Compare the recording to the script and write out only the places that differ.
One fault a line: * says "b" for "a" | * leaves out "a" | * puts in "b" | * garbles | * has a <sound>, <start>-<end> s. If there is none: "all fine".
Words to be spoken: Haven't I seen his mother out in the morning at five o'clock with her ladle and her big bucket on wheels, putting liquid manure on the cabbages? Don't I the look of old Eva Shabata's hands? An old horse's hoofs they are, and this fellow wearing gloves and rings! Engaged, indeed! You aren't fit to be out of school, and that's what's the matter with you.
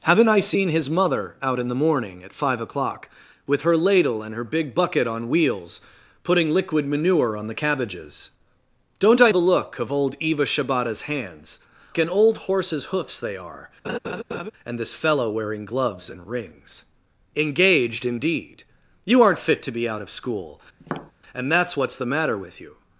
* has a laugh, 13.8-14.5 s
* has a tap, 20.8-21.1 s